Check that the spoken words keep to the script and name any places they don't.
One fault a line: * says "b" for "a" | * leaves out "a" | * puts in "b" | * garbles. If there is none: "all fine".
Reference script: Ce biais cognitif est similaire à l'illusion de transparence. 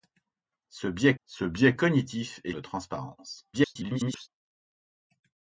* puts in "ce biais"
* leaves out "similaire à l'illusion"
* garbles